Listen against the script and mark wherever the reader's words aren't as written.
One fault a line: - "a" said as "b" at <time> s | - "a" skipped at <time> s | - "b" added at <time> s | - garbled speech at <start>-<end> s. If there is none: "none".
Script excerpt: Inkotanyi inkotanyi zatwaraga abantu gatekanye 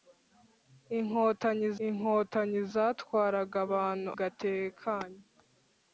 none